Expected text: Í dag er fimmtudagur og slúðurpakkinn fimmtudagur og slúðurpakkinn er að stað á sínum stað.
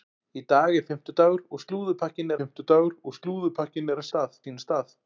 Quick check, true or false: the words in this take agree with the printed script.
true